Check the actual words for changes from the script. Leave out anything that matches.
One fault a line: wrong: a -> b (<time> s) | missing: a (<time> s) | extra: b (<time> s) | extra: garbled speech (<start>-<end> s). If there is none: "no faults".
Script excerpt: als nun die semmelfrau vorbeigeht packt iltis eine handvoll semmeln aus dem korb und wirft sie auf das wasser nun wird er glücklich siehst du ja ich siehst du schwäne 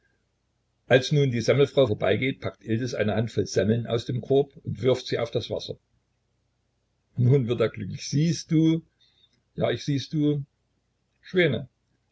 no faults